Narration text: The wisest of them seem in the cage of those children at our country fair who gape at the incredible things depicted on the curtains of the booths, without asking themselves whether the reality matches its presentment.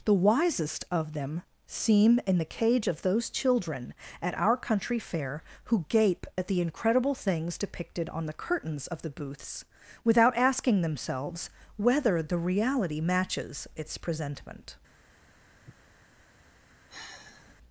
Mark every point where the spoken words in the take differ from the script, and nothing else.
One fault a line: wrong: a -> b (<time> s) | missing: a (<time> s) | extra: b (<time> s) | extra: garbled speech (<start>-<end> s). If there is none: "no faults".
no faults